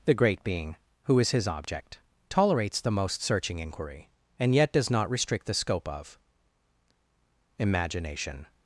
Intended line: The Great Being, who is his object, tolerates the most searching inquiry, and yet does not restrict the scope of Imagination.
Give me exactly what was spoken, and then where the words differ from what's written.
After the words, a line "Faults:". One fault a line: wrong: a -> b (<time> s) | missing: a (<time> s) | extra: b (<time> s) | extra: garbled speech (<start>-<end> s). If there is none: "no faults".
The Great Being, who is his object, tolerates the most searching inquiry, and yet does not restrict the scope of Imagination.
Faults:
no faults